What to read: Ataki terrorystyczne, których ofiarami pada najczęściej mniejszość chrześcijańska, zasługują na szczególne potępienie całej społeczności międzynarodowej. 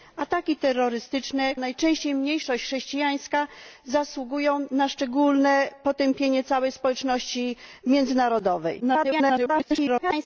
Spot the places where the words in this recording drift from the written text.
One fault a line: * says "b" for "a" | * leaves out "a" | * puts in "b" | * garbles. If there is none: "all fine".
* leaves out "których ofiarami pada"
* garbles